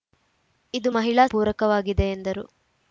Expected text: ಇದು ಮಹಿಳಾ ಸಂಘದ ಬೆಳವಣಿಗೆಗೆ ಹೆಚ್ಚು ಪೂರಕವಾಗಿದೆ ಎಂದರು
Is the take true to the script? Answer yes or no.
no